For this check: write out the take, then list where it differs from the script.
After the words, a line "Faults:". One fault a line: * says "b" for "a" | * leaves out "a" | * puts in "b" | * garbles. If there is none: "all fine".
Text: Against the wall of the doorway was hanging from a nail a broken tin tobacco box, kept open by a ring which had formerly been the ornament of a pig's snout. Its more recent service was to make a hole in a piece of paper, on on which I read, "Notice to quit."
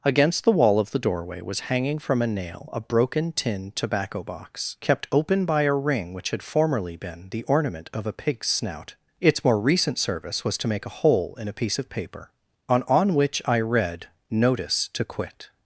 Against the wall of the doorway was hanging from a nail a broken tin tobacco box, kept open by a ring which had formerly been the ornament of a pig's snout. Its more recent service was to make a hole in a piece of paper, on on which I read, "Notice to quit."
Faults:
all fine